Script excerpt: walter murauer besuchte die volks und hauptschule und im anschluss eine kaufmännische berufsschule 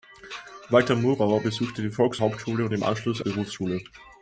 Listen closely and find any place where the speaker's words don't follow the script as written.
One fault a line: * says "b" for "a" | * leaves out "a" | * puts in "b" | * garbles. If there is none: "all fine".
* leaves out "und"
* leaves out "eine kaufmännische"